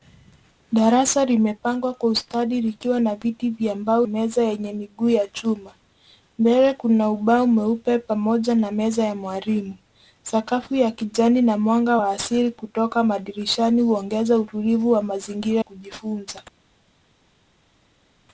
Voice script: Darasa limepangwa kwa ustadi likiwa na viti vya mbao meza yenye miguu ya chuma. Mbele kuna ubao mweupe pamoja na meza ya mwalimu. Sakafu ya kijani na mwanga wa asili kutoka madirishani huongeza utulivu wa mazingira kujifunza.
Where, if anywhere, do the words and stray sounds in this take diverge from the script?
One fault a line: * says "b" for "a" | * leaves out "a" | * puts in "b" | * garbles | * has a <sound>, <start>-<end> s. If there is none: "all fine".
all fine